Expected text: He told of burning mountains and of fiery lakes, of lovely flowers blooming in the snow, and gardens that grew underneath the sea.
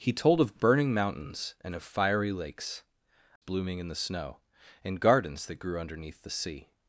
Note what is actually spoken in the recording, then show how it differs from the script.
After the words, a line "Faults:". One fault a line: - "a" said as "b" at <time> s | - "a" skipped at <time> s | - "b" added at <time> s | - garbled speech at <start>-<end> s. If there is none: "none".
He told of burning mountains and of fiery lakes, blooming in the snow, and gardens that grew underneath the sea.
Faults:
- "of lovely flowers" skipped at 2.8 s